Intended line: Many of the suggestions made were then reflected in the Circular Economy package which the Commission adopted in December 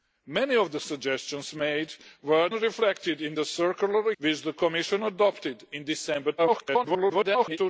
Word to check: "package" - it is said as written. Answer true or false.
false